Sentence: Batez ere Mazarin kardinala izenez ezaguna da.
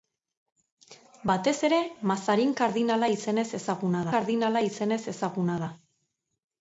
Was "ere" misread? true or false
false